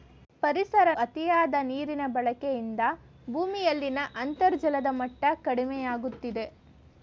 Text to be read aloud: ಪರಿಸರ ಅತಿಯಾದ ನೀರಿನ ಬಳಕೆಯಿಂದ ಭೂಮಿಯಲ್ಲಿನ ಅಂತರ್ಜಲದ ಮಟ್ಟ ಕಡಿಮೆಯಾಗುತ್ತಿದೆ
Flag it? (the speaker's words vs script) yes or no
no